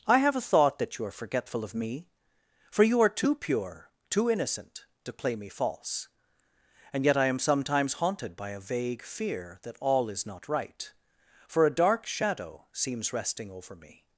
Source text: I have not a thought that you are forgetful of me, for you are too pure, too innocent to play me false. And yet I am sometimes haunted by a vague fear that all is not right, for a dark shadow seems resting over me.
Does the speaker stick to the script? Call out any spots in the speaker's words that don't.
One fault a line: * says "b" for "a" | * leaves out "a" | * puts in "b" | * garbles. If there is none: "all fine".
* leaves out "not"